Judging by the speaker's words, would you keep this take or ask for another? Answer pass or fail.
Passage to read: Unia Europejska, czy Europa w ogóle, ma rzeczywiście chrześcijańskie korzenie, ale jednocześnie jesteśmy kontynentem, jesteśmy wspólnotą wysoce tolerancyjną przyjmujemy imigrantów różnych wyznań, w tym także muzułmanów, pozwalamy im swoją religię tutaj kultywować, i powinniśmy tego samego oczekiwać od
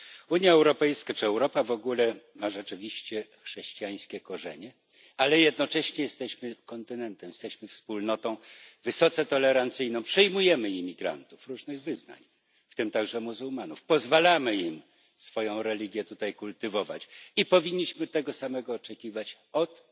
pass